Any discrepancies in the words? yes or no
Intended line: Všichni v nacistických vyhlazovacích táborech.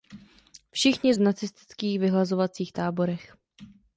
no